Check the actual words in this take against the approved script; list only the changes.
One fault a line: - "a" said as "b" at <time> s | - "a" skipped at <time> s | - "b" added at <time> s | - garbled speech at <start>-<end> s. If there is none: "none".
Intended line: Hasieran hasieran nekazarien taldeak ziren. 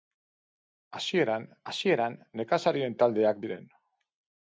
none